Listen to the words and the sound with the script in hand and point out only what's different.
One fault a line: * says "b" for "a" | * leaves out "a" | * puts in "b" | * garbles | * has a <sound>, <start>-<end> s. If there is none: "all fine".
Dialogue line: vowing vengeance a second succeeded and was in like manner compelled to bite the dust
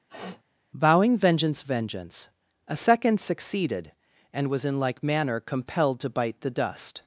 * has a sniff, 0.1-0.4 s
* puts in "vengeance"